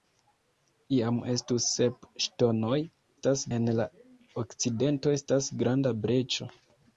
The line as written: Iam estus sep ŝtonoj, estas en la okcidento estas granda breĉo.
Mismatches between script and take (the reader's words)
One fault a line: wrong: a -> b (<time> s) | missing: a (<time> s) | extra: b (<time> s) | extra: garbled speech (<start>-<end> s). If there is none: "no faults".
no faults